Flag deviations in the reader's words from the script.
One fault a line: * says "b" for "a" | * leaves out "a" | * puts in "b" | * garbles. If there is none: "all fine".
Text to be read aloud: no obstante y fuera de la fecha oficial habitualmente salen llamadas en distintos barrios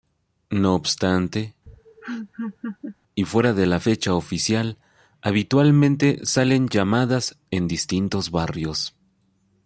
all fine